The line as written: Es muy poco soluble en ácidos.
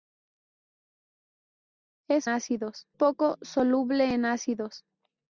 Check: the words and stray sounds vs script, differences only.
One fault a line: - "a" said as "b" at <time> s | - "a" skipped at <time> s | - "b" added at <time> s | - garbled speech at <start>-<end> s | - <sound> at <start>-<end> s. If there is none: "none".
- "muy" said as "ácidos" at 2.3 s